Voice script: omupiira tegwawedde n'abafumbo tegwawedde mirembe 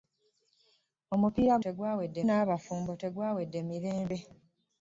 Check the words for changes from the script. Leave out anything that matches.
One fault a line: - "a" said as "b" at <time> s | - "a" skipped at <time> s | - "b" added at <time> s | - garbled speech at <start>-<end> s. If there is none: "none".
none